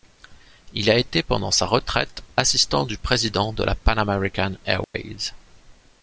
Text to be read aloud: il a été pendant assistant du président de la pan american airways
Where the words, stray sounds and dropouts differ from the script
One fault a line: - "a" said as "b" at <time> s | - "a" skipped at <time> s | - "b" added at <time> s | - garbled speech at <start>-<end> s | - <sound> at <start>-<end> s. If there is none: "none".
- "sa retraite" added at 1.5 s
- dropout at 4.8-4.9 s